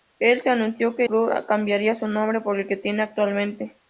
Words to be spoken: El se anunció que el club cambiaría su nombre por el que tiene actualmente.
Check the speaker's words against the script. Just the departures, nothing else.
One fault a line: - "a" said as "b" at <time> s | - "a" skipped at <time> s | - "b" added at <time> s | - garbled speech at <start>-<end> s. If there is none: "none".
- "el" skipped at 1.0 s